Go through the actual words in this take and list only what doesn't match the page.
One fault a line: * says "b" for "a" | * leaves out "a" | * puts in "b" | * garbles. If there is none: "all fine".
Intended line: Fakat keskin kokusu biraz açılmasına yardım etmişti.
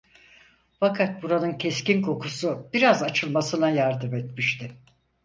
* puts in "buranın"